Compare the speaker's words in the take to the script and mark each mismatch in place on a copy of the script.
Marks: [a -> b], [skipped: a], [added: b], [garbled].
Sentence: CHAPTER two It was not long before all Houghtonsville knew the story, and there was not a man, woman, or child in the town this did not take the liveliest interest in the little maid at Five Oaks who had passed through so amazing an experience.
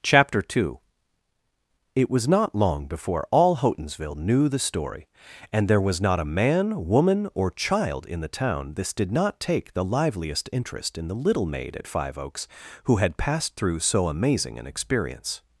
CHAPTER two It was not long before all Houghtonsville knew the story, and there was not a man, woman, or child in the town this did not take the liveliest interest in the little maid at Five Oaks who had passed through so amazing an experience.